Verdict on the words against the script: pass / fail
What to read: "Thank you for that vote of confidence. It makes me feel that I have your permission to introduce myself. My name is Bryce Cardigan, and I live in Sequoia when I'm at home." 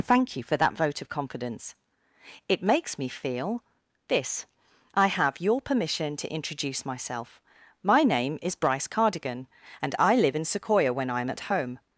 fail